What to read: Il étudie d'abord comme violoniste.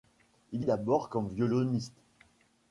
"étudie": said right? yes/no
no